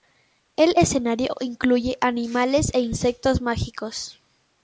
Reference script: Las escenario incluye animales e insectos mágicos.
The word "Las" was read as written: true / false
false